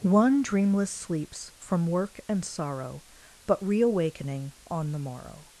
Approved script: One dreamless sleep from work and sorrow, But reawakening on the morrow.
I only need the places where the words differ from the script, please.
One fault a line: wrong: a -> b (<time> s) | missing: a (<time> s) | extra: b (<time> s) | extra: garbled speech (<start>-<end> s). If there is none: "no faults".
wrong: sleep -> sleeps (0.9 s)